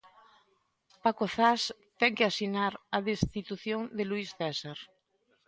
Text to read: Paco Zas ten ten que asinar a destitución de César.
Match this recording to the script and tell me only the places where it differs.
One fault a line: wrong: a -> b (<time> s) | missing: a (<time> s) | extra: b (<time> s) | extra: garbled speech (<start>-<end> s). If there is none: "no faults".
missing: ten (2.1 s)
extra: Luís (4.1 s)